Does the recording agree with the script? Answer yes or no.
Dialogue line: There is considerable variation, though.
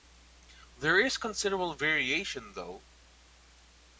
yes